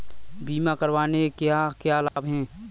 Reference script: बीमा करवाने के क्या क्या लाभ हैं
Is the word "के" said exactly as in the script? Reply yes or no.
no